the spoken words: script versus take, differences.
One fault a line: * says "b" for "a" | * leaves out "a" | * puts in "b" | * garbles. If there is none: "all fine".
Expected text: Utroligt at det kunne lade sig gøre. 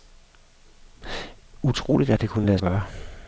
* leaves out "sig"